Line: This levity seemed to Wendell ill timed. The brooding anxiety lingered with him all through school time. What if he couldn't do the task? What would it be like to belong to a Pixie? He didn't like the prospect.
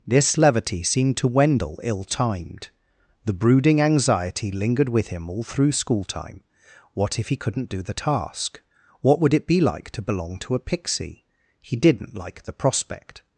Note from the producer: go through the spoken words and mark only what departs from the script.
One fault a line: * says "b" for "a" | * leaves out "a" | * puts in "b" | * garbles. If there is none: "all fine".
all fine